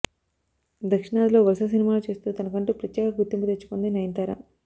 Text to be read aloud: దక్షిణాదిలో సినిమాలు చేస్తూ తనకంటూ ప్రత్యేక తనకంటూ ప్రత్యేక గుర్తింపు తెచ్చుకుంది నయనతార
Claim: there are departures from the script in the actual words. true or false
true